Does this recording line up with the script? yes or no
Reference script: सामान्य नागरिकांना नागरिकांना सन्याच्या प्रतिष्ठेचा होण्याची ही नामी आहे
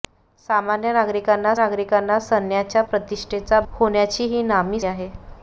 yes